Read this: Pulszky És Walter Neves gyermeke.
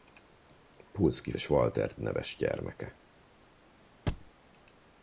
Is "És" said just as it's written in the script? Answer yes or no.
yes